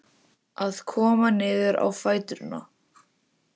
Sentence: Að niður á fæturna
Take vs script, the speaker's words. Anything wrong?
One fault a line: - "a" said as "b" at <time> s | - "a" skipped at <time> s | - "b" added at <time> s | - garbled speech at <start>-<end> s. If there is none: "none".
- "koma" added at 0.9 s